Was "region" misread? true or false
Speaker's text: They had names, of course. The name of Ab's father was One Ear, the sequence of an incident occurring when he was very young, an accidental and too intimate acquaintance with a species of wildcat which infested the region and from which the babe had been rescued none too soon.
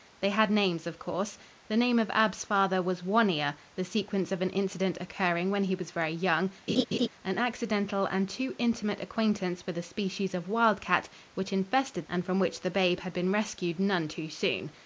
true